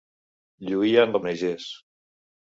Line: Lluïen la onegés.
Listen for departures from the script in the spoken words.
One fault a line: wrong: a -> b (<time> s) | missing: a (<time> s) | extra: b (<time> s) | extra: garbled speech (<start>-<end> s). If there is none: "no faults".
no faults